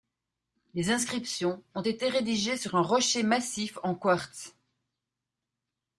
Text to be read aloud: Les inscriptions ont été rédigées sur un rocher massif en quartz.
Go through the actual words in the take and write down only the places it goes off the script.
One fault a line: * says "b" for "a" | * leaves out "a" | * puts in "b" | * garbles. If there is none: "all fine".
all fine